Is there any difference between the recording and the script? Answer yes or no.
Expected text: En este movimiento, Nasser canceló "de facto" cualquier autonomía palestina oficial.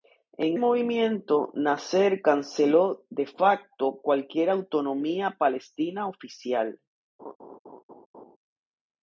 yes